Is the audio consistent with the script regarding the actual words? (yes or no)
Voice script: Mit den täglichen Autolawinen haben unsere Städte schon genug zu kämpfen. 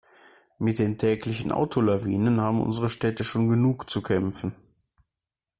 yes